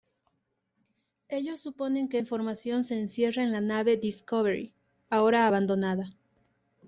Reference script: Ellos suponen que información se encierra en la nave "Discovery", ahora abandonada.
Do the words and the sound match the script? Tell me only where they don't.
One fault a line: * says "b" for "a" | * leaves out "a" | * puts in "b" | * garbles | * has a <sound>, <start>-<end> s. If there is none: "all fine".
all fine